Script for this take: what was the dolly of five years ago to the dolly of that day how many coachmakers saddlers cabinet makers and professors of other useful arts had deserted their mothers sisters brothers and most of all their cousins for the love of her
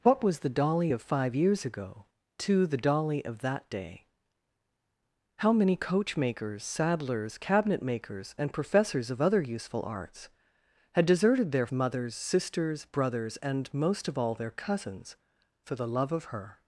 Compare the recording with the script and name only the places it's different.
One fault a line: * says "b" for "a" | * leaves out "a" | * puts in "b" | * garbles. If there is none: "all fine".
all fine